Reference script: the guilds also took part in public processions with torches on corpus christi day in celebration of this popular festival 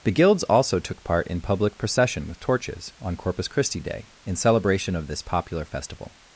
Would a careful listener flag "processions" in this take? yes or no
yes